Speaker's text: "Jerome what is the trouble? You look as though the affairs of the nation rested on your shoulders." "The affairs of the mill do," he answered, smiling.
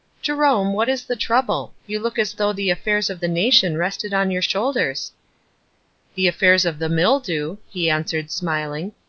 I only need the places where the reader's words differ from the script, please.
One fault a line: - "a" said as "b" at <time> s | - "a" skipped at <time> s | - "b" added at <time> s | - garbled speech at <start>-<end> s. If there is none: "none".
none